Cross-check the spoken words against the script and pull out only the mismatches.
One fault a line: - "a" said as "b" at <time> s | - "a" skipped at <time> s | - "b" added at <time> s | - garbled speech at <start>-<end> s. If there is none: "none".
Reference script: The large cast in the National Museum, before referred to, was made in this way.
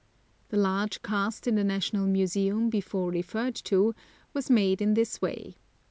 none